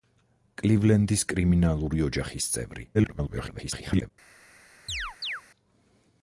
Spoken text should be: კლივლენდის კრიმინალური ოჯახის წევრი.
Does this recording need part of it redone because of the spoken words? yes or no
yes